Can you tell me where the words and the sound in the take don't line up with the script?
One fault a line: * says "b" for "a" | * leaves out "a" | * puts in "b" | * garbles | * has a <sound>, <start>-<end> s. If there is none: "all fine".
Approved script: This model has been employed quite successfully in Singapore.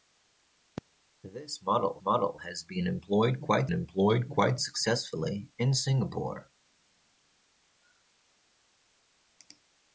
* puts in "model"
* puts in "employed quite"